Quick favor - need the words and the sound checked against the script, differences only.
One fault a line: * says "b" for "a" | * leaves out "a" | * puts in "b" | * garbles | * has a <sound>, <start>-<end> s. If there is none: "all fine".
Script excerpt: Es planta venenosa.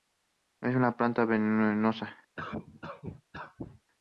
* puts in "una"
* has a cough, 2.4-3.8 s